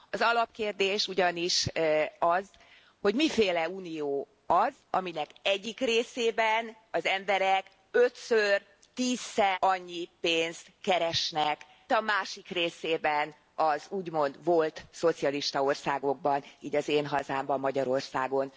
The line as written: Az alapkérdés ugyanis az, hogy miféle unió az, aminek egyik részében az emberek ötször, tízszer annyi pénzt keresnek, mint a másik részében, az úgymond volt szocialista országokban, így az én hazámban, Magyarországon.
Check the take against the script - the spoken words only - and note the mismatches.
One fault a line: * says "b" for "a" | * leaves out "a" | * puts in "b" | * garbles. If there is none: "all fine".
* leaves out "mint"